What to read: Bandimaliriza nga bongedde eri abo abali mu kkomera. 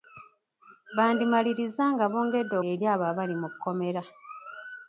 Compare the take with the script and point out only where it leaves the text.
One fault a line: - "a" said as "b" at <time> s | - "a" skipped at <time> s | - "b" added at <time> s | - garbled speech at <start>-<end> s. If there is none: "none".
none